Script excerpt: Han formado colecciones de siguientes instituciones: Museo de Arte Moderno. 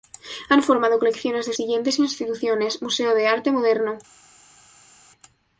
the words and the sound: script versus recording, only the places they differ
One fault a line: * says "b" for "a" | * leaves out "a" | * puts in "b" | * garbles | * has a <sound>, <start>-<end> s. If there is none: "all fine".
all fine